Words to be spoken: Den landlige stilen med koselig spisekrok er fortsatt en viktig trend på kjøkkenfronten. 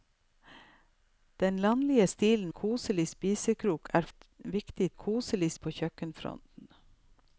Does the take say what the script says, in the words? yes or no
no